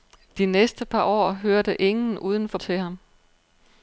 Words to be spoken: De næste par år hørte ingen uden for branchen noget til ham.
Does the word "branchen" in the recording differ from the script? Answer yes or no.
yes